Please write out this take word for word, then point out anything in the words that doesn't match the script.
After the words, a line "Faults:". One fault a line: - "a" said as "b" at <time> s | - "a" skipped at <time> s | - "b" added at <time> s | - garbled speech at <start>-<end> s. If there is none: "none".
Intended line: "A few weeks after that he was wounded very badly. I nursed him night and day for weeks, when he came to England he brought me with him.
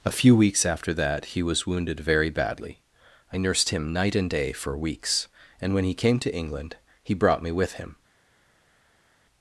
"A few weeks after that he was wounded very badly. I nursed him night and day for weeks, and when he came to England he brought me with him.
Faults:
- "and" added at 5.6 s